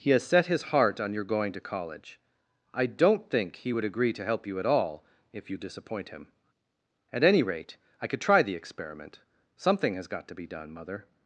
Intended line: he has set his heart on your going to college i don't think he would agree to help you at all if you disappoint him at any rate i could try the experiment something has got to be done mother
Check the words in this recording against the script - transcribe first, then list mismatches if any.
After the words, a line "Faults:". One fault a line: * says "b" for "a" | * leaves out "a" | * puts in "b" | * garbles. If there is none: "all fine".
he has set his heart on your going to college i don't think he would agree to help you at all if you disappoint him at any rate i could try the experiment something has got to be done mother
Faults:
all fine